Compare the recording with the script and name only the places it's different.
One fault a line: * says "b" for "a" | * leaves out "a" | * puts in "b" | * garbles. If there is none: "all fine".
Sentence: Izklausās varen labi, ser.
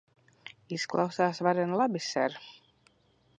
all fine